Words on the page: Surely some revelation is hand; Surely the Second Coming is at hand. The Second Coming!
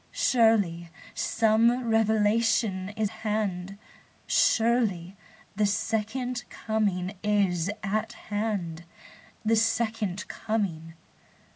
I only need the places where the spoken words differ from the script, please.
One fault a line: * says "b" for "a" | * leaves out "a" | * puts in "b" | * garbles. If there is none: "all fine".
all fine